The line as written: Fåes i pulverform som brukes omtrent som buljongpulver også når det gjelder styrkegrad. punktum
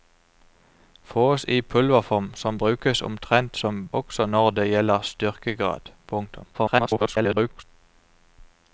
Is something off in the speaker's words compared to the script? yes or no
yes